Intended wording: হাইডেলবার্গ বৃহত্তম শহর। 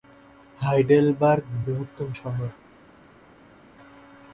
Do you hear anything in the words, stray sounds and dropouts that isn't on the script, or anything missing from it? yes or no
no